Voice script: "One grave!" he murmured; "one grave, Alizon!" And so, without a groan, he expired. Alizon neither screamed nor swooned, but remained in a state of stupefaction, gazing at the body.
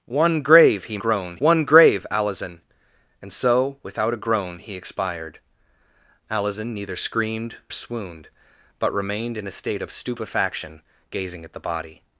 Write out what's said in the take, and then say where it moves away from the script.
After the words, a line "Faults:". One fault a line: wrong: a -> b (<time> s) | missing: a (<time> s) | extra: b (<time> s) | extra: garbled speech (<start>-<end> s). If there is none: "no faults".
"One grave!" he groan; "one grave, Alizon!" And so, without a groan, he expired. Alizon neither screamed swooned, but remained in a state of stupefaction, gazing at the body.
Faults:
wrong: murmured -> groan (1.0 s)
missing: nor (7.6 s)